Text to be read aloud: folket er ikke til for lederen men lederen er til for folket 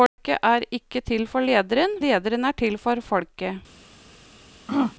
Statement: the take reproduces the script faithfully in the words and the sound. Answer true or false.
false